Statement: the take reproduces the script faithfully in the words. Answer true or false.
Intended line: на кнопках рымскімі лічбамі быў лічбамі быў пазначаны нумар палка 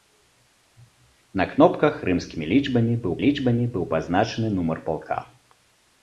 true